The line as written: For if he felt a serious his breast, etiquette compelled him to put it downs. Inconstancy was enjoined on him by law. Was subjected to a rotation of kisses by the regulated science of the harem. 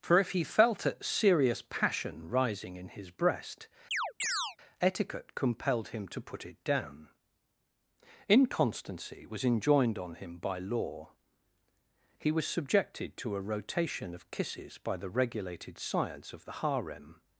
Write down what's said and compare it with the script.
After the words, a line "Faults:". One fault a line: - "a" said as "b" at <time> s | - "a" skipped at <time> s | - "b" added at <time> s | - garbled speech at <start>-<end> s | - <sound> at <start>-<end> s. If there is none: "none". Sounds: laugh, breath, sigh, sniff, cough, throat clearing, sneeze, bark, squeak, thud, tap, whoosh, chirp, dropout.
For if he felt a serious passion rising in his breast, etiquette compelled him to put it down. Inconstancy was enjoined on him by law. He was subjected to a rotation of kisses by the regulated science of the harem.
Faults:
- "passion rising in" added at 1.6 s
- chirp at 3.9-4.6 s
- "downs" said as "down" at 6.6 s
- "He" added at 12.2 s